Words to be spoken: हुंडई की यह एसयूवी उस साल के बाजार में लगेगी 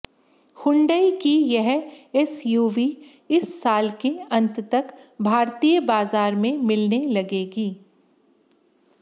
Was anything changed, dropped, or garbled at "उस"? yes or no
yes